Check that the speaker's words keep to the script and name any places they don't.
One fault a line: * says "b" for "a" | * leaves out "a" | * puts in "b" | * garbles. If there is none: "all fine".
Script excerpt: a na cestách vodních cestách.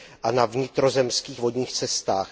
* says "vnitrozemských" for "cestách"